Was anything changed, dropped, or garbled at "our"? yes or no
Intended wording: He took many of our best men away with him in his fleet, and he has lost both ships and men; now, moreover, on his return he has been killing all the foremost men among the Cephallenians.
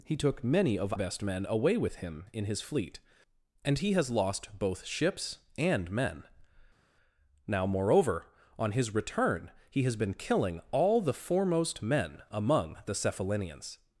yes